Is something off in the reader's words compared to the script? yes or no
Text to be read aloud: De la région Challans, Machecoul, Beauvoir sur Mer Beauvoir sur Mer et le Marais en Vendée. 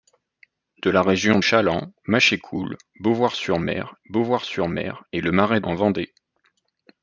no